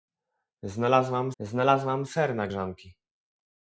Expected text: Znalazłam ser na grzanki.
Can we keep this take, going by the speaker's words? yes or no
no